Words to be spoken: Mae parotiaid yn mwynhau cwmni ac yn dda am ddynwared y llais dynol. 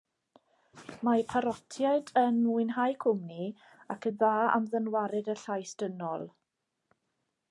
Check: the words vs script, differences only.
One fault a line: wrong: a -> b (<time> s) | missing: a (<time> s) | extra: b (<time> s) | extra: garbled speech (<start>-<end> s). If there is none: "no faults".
no faults